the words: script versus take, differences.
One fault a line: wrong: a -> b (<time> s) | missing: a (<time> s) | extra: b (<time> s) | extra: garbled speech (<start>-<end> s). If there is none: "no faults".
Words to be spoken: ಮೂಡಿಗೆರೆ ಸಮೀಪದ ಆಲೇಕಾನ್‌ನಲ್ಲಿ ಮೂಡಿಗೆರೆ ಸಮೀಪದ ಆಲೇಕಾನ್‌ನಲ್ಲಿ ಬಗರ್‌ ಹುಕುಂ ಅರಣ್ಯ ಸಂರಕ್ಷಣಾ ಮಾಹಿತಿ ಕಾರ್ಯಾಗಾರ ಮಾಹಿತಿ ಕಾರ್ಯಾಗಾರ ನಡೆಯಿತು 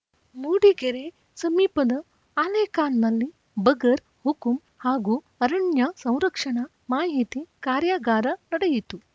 missing: ಮೂಡಿಗೆರೆ ಸಮೀಪದ ಆಲೇಕಾನ್‌ನಲ್ಲಿ (3.3 s)
extra: ಹಾಗೂ (4.8 s)
missing: ಮಾಹಿತಿ ಕಾರ್ಯಾಗಾರ (8.3 s)